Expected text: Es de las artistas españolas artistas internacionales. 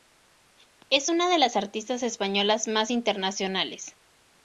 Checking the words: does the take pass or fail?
fail